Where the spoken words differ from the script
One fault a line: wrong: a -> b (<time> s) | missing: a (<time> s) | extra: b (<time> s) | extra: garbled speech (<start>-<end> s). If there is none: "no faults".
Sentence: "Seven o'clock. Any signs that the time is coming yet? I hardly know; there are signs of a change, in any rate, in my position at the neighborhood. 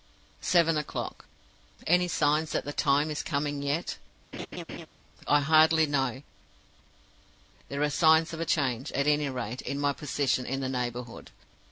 wrong: in -> at (8.9 s)
wrong: at -> in (10.5 s)